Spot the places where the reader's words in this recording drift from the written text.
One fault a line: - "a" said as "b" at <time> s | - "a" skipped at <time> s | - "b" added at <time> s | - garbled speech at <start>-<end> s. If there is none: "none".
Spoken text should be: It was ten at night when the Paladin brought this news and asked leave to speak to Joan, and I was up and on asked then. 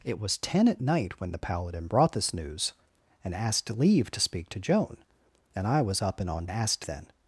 none